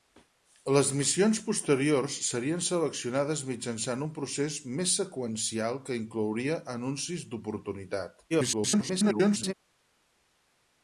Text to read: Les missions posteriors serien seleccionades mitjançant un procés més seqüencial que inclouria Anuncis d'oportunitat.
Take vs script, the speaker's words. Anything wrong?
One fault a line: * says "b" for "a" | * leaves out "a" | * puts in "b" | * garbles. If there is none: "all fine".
* garbles